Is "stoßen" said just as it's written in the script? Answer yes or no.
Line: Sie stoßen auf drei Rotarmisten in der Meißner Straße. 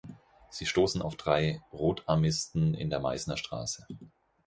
yes